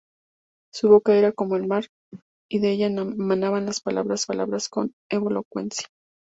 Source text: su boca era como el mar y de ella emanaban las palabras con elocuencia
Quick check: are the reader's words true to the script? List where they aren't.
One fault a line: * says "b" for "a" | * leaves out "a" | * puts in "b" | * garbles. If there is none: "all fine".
* puts in "palabras"